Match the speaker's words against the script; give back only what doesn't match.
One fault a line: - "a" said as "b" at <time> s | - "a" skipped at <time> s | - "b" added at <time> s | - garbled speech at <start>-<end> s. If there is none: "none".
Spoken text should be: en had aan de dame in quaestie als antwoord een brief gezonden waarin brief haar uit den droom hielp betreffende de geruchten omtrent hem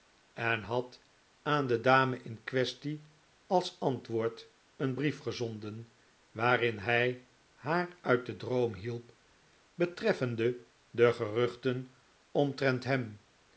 - "brief" said as "hij" at 6.8 s